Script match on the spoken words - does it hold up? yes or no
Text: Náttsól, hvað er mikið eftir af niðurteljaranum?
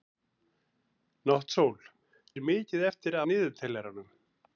no